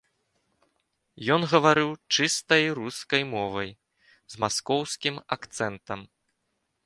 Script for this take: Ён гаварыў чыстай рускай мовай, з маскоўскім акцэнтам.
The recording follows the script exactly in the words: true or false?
true